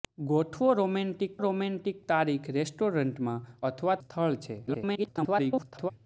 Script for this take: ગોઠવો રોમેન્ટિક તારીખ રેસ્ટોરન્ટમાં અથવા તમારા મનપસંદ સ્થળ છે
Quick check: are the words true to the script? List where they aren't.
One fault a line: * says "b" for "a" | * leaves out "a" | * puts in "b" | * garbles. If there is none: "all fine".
* puts in "રોમેન્ટિક"
* leaves out "તમારા મનપસંદ"
* garbles